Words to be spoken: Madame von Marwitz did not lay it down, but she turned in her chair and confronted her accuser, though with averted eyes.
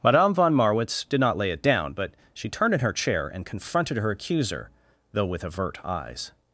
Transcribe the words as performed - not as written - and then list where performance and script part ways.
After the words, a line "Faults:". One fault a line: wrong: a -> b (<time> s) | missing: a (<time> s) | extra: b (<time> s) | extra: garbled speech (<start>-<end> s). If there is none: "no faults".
Madame von Marwitz did not lay it down, but she turned in her chair and confronted her accuser, though with avert eyes.
Faults:
wrong: averted -> avert (5.4 s)